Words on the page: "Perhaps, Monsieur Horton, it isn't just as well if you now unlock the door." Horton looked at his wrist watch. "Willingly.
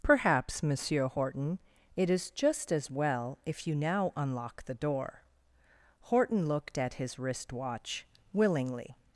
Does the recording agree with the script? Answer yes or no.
no